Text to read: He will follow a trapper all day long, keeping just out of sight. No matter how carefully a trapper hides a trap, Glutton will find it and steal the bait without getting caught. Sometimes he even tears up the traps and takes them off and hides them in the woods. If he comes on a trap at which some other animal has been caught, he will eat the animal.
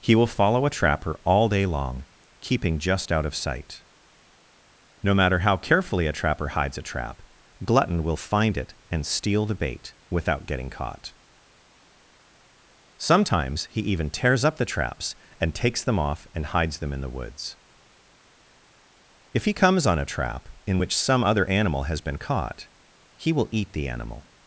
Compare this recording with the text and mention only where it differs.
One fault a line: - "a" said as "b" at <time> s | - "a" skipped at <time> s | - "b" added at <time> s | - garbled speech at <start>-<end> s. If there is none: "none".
- "at" said as "in" at 20.7 s